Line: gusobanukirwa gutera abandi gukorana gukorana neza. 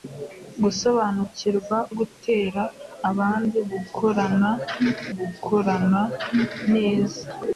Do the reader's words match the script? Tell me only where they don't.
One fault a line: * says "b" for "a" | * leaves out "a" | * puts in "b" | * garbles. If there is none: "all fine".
all fine